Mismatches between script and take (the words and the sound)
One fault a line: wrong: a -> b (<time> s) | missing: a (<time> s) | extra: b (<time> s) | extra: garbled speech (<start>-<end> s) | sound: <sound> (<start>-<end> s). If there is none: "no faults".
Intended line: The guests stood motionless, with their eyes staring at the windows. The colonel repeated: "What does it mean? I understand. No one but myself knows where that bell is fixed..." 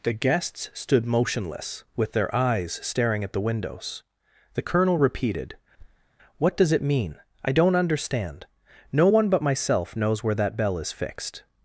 sound: thud (5.8-6.1 s)
extra: don't (7.5 s)